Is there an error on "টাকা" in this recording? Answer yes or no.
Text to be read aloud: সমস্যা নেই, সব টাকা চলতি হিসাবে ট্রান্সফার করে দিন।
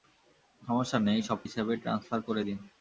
yes